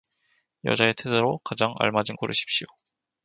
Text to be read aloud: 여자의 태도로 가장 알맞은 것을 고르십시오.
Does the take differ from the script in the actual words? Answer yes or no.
yes